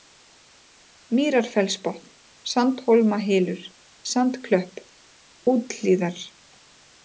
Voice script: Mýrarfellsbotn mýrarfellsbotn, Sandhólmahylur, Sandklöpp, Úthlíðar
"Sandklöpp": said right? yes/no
yes